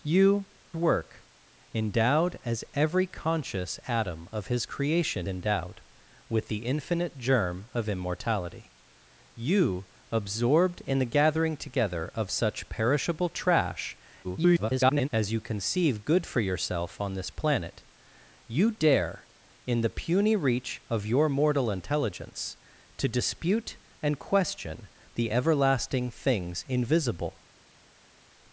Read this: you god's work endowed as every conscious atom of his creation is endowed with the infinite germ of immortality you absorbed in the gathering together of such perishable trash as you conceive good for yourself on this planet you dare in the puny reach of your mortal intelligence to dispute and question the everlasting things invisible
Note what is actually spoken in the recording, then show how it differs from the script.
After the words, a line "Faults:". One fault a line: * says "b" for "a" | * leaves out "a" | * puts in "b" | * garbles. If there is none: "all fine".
you work endowed as every conscious atom of his creation endowed with the infinite germ of immortality you absorbed in the gathering together of such perishable trash [garbled] as you conceive good for yourself on this planet you dare in the puny reach of your mortal intelligence to dispute and question the everlasting things invisible
Faults:
* leaves out "god's"
* leaves out "is"
* garbles